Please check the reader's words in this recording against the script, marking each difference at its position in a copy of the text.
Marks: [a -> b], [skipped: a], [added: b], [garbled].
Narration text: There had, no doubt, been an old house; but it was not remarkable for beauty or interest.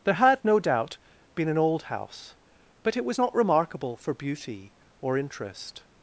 There had, no doubt, been an old house; but it was not remarkable for beauty or interest.